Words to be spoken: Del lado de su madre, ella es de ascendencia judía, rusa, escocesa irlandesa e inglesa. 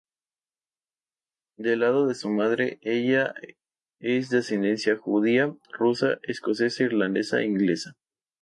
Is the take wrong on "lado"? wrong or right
right